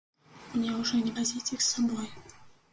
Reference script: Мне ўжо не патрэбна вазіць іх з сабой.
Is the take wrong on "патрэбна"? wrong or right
wrong